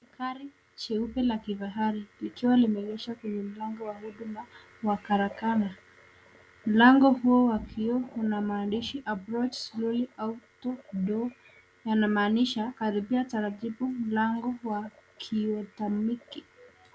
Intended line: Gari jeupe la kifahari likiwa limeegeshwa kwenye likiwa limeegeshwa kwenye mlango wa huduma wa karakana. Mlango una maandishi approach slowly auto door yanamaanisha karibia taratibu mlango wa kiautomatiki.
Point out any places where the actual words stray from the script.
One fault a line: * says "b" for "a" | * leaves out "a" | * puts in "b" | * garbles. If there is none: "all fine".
* leaves out "likiwa limeegeshwa kwenye"
* puts in "huo wa kioo"